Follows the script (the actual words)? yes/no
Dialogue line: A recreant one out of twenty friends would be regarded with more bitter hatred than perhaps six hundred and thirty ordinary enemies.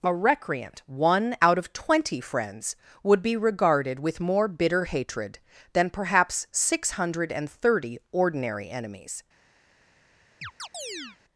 yes